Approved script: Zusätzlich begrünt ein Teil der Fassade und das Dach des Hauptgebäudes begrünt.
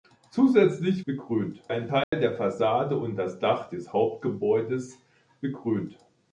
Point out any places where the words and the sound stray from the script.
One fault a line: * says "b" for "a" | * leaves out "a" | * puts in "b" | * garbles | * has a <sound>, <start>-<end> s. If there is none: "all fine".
* has a dropout, 2.0-2.1 s